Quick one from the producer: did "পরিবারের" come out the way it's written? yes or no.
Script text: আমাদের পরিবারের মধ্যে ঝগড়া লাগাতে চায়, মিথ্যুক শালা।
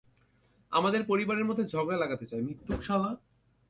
yes